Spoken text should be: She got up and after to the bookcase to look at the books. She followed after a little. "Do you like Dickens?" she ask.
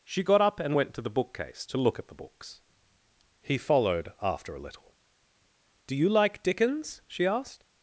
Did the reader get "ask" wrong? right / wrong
wrong